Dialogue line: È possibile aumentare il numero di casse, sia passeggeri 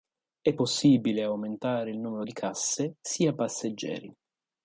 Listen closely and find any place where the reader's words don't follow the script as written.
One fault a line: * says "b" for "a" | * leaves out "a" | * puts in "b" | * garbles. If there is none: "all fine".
all fine